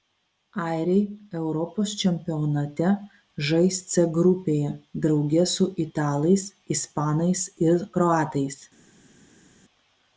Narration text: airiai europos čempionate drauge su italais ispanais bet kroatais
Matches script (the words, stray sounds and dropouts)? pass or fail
fail